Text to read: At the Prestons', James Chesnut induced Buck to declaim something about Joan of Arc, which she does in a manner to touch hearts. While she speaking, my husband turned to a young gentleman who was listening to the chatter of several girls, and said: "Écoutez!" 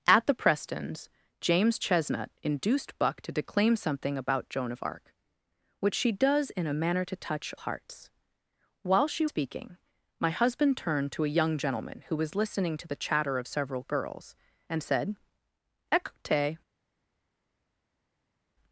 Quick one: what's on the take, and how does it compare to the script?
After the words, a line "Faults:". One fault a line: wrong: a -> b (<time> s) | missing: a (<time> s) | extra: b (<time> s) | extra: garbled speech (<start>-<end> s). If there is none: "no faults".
At the Prestons', James Chesnut induced Buck to declaim something about Joan of Arc, which she does in a manner to touch hearts. While she speaking, my husband turned to a young gentleman who was listening to the chatter of several girls, and said: "Écoutez!"
Faults:
no faults